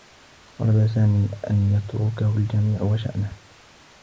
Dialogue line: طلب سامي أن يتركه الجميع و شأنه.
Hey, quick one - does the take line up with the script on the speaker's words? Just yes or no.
yes